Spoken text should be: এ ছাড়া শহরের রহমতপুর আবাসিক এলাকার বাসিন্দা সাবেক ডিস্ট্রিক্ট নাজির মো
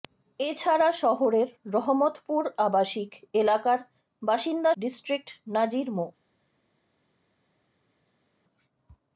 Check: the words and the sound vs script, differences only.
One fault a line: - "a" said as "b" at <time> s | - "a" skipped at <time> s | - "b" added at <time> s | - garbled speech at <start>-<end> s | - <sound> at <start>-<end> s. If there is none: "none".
- "সাবেক" skipped at 4.7 s